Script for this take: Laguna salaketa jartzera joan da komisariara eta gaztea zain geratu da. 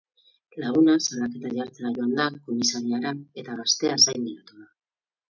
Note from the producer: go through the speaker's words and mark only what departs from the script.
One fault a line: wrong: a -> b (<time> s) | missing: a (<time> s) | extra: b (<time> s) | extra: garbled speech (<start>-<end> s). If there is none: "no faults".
no faults